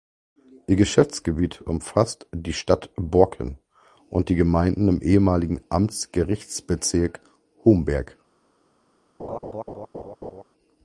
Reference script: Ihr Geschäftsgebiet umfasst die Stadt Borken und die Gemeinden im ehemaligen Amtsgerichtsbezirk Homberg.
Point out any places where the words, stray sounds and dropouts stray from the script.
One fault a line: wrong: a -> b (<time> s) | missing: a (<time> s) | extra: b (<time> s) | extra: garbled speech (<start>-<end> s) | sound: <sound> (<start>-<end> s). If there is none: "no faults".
sound: laugh (9.2-10.4 s)